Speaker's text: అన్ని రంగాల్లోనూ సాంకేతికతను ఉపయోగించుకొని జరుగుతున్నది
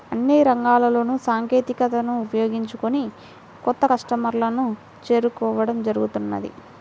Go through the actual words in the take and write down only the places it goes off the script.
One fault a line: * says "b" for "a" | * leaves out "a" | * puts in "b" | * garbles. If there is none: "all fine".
* puts in "కొత్త కస్టమర్లను చేరుకోవడం"